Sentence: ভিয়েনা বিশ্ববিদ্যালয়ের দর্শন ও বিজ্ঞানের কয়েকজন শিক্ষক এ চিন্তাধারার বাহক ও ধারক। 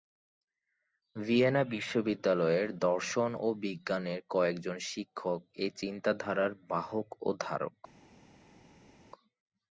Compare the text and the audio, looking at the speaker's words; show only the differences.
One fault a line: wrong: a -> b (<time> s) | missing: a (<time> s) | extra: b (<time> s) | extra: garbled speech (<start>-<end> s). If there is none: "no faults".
no faults